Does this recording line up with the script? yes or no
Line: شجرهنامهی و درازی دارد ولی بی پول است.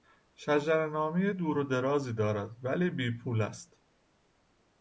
no